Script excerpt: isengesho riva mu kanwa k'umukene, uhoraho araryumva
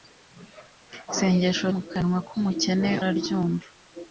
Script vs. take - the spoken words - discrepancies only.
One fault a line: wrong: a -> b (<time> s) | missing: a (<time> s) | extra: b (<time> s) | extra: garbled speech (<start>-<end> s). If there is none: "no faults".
missing: riva (1.6 s)
missing: uhoraho (2.9 s)